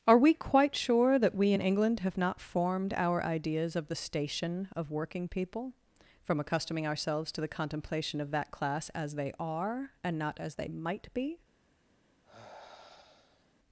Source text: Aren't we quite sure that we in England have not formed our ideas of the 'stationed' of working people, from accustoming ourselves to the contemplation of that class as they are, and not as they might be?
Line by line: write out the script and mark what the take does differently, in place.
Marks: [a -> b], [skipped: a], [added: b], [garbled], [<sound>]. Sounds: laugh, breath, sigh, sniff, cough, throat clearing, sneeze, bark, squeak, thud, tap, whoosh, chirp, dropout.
[Aren't -> Are] we quite sure that we in England have not formed our ideas of the ['stationed' -> station] of working people, from accustoming ourselves to the contemplation of that class as they are, and not as they might be? [sigh]